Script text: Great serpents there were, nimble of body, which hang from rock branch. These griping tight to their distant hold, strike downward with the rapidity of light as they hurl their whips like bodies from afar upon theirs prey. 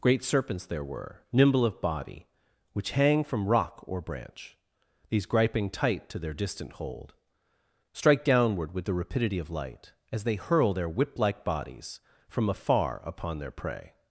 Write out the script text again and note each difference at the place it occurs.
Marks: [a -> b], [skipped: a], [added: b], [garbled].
Great serpents there were, nimble of body, which hang from rock [added: or] branch. These griping tight to their distant hold, strike downward with the rapidity of light as they hurl their [whips -> whip] like bodies from afar upon [theirs -> their] prey.